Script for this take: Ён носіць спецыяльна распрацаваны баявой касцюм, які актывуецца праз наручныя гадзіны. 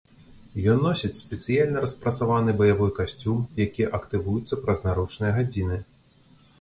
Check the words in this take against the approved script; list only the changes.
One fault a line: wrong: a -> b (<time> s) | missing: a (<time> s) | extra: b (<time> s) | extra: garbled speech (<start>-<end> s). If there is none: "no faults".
no faults